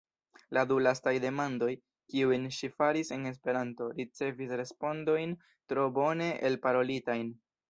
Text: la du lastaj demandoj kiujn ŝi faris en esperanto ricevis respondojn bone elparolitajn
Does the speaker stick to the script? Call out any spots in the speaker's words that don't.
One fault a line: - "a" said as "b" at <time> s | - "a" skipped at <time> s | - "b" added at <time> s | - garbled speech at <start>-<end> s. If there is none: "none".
- "tro" added at 5.7 s